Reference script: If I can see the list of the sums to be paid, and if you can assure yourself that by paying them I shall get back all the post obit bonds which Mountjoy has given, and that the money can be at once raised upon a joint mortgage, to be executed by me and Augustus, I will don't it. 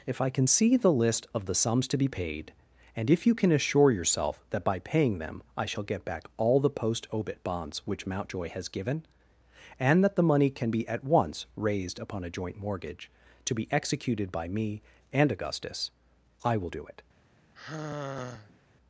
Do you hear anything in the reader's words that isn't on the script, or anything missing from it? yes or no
yes